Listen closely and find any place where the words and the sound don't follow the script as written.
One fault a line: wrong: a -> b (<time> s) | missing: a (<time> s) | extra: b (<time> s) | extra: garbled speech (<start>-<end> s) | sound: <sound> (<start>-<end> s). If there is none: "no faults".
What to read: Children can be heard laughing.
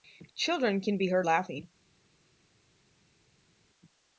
no faults